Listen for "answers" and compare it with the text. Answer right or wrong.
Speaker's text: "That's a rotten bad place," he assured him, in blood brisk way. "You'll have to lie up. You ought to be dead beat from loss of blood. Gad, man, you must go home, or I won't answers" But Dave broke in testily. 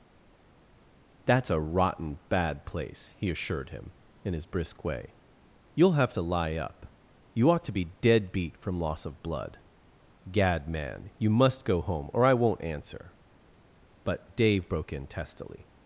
wrong